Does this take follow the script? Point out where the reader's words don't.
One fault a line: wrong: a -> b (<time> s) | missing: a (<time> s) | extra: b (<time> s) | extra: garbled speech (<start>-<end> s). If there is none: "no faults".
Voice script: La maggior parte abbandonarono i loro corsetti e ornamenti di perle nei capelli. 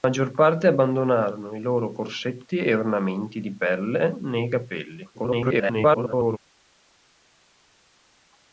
extra: garbled speech (5.1-6.4 s)